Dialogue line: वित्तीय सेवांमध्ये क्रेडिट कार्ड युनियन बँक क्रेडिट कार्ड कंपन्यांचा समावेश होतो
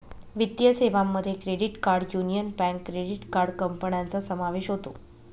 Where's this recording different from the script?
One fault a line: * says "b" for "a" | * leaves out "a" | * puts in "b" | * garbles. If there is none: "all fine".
all fine